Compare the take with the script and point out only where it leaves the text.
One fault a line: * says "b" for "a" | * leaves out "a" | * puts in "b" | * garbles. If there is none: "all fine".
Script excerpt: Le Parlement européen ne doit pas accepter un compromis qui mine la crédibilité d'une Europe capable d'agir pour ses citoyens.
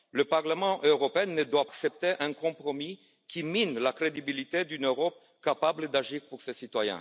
* leaves out "pas"